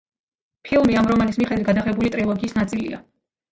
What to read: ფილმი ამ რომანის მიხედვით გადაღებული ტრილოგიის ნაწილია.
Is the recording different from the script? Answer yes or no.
no